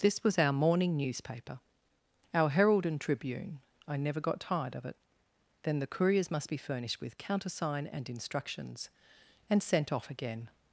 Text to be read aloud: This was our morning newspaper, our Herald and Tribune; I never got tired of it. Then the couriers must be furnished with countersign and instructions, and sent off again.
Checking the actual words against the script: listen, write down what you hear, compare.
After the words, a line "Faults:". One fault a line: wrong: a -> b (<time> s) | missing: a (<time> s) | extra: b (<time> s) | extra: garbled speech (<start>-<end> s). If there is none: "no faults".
This was our morning newspaper, our Herald and Tribune; I never got tired of it. Then the couriers must be furnished with countersign and instructions, and sent off again.
Faults:
no faults